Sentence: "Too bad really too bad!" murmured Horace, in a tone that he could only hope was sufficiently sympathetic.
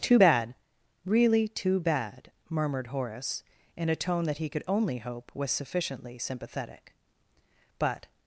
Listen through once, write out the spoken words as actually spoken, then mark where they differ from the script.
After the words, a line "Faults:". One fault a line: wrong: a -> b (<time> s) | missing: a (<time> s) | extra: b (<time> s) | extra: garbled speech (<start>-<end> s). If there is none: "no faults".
"Too bad really too bad!" murmured Horace, in a tone that he could only hope was sufficiently sympathetic. "But
Faults:
extra: But (7.8 s)